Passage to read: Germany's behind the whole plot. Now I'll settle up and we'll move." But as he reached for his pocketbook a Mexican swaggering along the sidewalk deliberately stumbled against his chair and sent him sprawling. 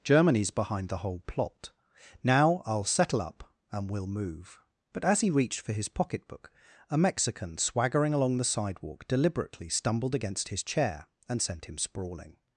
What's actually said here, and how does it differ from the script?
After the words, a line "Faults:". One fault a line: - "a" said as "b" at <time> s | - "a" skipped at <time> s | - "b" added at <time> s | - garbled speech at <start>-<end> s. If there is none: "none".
Germany's behind the whole plot. Now I'll settle up and we'll move." But as he reached for his pocketbook a Mexican swaggering along the sidewalk deliberately stumbled against his chair and sent him sprawling.
Faults:
none